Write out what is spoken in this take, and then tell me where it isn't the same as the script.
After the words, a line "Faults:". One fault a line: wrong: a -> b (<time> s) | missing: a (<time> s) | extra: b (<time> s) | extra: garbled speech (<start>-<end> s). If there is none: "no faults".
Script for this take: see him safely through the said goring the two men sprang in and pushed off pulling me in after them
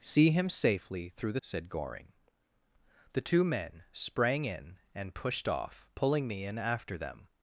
see him safely through the said goring the two men sprang in and pushed off pulling me in after them
Faults:
no faults